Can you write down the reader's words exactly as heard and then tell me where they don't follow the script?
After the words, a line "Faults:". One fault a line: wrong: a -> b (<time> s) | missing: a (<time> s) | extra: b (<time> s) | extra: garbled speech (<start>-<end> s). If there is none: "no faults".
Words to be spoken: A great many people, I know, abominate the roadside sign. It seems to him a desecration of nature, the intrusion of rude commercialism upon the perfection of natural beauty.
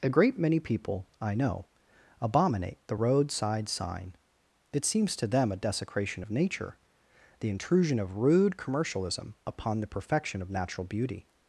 A great many people, I know, abominate the roadside sign. It seems to them a desecration of nature, the intrusion of rude commercialism upon the perfection of natural beauty.
Faults:
wrong: him -> them (5.3 s)